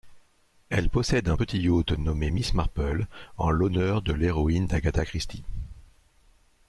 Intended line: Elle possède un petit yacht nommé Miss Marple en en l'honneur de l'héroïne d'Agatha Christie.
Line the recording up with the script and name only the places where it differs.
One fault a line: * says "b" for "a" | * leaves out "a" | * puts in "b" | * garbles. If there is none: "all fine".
* leaves out "en"